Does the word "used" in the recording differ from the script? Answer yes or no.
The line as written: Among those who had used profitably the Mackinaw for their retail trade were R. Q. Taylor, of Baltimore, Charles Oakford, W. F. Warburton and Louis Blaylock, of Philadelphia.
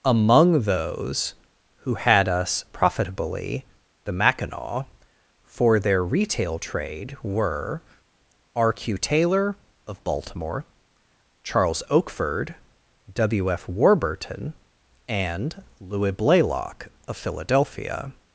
yes